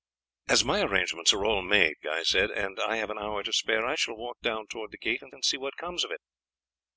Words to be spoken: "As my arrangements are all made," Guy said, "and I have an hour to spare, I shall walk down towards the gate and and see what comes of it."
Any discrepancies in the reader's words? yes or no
no